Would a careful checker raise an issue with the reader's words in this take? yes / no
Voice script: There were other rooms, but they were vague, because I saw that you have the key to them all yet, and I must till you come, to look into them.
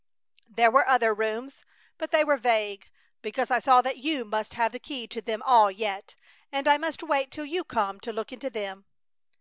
yes